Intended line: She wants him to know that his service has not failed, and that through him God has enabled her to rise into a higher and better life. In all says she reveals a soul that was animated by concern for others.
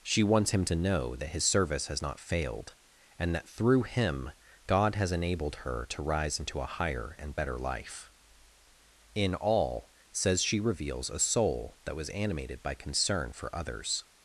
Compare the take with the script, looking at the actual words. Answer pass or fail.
pass